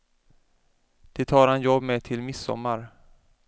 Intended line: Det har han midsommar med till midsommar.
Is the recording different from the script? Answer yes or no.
yes